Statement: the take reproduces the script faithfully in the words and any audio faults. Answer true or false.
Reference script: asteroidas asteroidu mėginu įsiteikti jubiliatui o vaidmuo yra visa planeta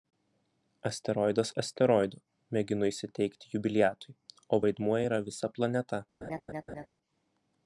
false